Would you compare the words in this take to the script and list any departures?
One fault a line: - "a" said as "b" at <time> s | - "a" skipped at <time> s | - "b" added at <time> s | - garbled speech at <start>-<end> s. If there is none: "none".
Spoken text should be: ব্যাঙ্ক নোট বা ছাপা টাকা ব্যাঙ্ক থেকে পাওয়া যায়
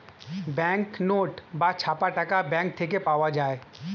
none